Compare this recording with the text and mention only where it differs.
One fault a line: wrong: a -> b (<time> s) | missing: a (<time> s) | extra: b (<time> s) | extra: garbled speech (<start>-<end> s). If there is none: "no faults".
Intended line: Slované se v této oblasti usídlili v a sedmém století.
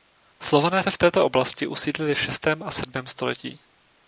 extra: šestém (2.2 s)